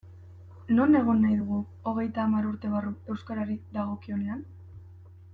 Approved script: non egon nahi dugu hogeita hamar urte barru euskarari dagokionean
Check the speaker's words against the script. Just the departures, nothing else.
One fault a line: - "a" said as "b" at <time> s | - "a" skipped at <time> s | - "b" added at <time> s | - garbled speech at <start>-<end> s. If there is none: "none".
none